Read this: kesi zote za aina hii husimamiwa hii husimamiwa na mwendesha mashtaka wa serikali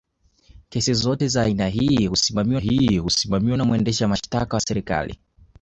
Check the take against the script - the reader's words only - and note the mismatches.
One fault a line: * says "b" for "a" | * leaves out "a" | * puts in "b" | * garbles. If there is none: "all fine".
all fine